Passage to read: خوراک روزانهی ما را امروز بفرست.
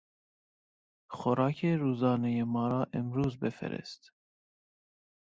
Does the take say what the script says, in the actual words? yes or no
yes